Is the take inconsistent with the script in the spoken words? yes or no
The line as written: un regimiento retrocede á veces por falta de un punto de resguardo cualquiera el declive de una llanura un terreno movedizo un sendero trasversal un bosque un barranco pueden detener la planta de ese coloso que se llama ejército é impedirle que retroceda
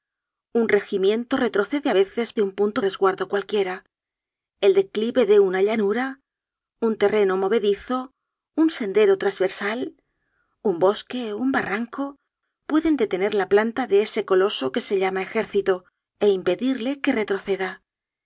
yes